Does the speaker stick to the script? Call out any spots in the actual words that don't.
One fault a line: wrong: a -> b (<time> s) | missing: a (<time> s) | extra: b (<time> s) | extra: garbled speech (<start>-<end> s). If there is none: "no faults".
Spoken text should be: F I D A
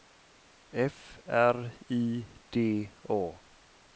extra: R (1.3 s)